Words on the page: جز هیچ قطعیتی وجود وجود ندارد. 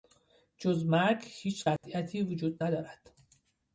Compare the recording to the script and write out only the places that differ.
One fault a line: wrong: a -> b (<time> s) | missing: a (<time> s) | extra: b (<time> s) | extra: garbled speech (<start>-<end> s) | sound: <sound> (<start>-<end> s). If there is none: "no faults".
extra: مرگ (0.8 s)
sound: dropout (1.8-1.8 s)
missing: وجود (2.6 s)